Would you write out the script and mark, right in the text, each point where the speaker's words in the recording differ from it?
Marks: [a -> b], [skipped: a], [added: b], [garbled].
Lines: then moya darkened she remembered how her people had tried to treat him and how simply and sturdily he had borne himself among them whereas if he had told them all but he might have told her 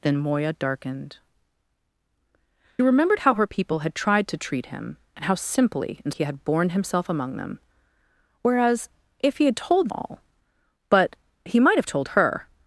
then moya darkened [skipped: she] remembered how her people had tried to treat him and how simply and [skipped: sturdily] he had borne himself among them whereas if he had told [skipped: them] all but he might have told her